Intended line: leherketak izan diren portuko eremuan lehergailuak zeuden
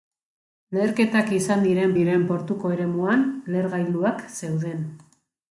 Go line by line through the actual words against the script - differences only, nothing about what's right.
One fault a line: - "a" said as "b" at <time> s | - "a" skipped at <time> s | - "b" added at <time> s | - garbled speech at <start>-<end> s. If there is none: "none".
- "diren" added at 2.0 s